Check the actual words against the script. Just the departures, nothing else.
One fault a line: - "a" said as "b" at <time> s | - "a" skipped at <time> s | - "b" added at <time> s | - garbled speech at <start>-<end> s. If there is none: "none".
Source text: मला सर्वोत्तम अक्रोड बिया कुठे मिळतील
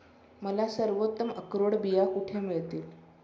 none